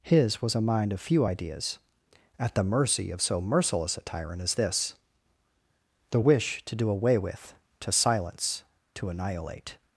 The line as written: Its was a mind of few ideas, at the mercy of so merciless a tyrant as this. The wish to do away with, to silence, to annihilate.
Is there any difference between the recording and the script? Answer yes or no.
yes